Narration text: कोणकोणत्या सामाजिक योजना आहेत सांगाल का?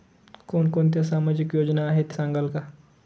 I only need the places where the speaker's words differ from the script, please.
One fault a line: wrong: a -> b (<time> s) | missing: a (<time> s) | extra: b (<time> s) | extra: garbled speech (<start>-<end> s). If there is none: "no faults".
no faults